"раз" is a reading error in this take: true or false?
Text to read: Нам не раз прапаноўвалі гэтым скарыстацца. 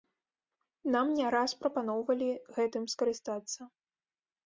false